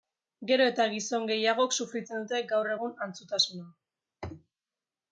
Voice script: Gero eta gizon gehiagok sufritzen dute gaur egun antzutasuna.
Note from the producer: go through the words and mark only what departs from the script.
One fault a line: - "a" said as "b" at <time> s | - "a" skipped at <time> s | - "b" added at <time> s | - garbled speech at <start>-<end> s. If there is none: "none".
none